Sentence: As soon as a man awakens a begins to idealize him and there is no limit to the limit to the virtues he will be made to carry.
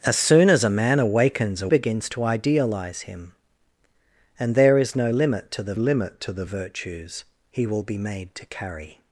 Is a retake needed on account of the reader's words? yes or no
no